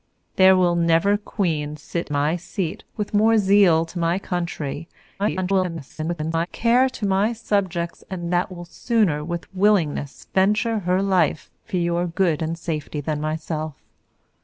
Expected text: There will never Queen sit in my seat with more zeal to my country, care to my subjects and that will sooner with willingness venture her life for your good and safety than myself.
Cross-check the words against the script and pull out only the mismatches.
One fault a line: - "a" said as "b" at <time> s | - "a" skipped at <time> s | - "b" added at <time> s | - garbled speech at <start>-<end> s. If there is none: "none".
- "in" skipped at 2.1 s
- garbled speech at 5.2-6.5 s